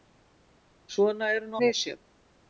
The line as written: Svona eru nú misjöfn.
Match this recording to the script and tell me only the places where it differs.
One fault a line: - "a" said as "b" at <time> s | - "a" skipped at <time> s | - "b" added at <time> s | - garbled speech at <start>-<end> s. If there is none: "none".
none